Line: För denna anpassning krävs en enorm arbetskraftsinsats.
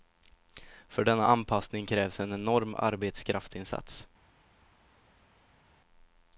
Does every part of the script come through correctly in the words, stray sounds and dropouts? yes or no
yes